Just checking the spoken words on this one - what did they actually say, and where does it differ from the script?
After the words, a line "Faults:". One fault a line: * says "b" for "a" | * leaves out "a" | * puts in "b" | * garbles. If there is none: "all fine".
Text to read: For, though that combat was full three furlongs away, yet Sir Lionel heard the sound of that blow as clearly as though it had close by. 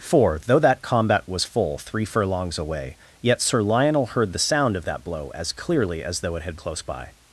For, though that combat was full three furlongs away, yet Sir Lionel heard the sound of that blow as clearly as though it had close by.
Faults:
all fine